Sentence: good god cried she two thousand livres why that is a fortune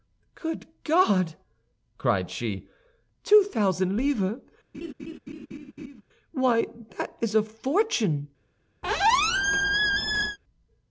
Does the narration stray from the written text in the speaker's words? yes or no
no